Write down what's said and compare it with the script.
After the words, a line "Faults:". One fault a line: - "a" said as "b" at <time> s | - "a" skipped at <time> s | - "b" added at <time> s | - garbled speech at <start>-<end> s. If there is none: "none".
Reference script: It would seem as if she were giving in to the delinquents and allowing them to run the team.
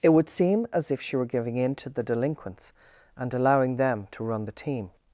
It would seem as if she were giving in to the delinquents and allowing them to run the team.
Faults:
none